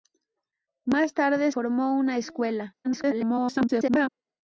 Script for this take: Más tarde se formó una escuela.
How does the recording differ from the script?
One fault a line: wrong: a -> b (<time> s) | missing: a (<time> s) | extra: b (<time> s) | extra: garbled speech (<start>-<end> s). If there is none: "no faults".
missing: se (1.5 s)
extra: garbled speech (2.8-4.1 s)